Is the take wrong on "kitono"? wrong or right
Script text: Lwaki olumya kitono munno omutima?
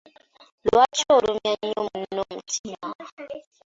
wrong